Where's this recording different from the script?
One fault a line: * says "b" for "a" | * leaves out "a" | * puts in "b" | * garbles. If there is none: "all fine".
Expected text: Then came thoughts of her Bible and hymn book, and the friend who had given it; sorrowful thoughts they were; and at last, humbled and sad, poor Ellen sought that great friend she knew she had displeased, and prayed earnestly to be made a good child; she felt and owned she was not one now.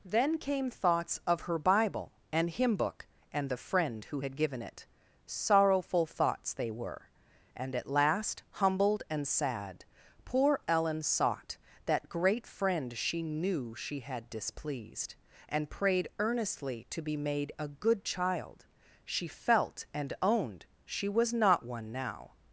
all fine